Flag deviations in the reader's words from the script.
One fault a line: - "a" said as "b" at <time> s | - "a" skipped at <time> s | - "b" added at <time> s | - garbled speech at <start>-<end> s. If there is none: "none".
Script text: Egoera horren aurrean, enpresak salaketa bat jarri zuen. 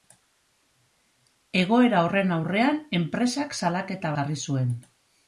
- "bat" skipped at 4.2 s